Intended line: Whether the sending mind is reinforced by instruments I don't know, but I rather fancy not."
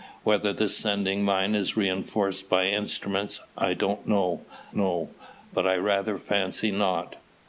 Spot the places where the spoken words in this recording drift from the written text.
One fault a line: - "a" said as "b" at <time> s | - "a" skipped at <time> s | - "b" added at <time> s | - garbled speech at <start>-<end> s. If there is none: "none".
- "know" added at 4.7 s